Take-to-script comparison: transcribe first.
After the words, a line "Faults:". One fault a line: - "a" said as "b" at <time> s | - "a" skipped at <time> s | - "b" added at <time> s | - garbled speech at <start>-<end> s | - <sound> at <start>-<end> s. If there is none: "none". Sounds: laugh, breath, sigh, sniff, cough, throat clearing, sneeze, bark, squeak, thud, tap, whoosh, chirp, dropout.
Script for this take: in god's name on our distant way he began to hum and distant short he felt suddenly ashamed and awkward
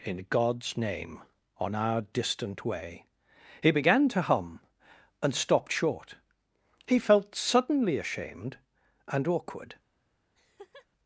in god's name on our distant way he began to hum and stopped short he felt suddenly ashamed and awkward
Faults:
- "distant" said as "stopped" at 5.3 s
- laugh at 10.3-10.9 s